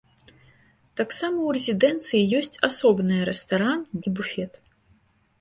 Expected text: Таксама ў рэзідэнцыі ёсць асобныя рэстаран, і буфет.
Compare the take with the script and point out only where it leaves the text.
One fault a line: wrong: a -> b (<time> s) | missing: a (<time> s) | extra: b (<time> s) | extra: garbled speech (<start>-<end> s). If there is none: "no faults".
no faults